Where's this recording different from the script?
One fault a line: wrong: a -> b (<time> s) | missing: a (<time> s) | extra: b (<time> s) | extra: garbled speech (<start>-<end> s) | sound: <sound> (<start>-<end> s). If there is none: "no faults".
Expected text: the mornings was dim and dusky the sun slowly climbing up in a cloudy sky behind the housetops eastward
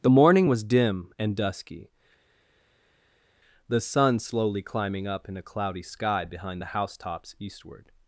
wrong: mornings -> morning (0.1 s)